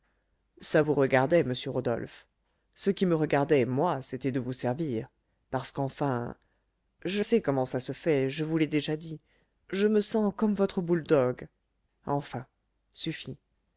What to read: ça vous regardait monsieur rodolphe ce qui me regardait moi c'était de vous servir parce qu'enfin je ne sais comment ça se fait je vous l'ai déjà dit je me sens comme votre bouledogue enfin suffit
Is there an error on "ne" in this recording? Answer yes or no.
yes